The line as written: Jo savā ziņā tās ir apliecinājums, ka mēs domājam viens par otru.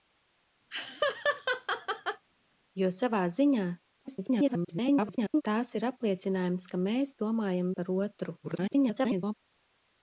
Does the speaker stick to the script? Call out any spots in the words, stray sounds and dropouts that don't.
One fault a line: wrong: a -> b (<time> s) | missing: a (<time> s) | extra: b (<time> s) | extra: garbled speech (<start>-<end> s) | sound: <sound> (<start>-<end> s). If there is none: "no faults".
sound: laugh (0.7-2.2 s)
extra: garbled speech (4.0-5.4 s)
missing: viens (7.7 s)
extra: garbled speech (8.4-9.3 s)